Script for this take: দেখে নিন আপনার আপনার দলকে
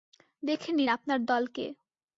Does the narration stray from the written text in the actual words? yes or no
yes